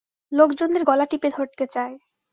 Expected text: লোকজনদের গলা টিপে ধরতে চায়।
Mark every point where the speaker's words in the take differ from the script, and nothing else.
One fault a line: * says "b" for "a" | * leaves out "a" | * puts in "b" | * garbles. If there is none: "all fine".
all fine